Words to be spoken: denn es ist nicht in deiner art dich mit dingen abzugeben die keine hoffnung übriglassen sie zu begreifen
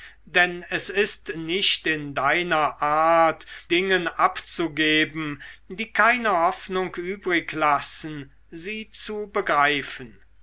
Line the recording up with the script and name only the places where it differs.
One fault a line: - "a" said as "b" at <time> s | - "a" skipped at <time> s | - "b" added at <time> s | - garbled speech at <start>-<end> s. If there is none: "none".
- "dich mit" skipped at 3.4 s